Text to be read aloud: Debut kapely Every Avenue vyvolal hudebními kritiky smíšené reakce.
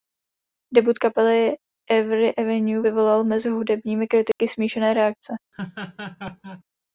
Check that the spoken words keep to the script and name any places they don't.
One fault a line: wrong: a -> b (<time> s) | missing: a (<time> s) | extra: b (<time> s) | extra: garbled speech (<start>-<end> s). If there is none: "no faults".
extra: mezi (3.2 s)